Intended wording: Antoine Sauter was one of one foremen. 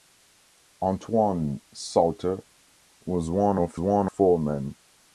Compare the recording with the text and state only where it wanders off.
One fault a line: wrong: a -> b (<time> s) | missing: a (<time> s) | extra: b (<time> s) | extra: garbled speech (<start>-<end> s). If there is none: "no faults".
no faults